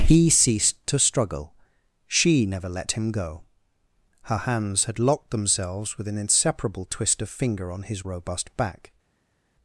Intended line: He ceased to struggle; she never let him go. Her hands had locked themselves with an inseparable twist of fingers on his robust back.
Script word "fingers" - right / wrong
wrong